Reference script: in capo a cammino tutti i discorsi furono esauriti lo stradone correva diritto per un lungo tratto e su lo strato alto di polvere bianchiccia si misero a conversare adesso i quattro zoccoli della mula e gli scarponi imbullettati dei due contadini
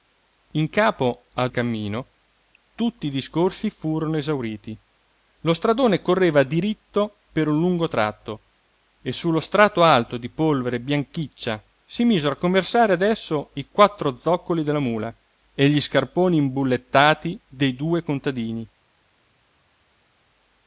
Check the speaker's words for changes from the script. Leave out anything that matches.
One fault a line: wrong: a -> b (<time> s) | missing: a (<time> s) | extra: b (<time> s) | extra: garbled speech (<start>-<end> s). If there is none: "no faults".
no faults